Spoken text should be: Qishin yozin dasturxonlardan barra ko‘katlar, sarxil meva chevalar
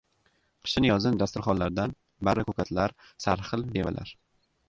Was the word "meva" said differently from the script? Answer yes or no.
yes